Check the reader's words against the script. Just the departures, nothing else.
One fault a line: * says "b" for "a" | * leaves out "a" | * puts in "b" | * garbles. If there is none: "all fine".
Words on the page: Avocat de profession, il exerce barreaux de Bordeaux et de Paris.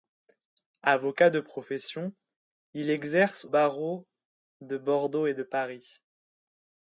all fine